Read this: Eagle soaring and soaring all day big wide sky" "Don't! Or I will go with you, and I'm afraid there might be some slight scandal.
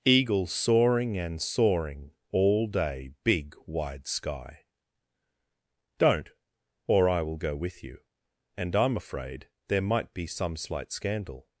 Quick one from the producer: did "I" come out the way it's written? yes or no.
yes